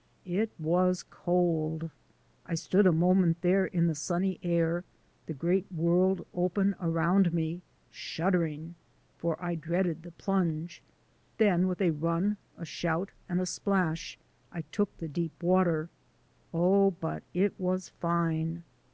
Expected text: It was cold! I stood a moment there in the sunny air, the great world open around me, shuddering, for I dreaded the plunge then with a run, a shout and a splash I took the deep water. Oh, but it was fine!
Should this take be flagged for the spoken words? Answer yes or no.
no